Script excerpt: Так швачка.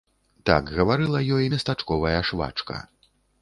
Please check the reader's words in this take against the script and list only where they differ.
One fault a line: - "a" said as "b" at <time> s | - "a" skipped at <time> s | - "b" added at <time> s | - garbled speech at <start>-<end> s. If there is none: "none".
- "гаварыла ёй местачковая" added at 0.8 s